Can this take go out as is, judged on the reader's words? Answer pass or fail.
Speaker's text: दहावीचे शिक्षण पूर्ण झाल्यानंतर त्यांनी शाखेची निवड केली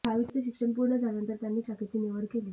pass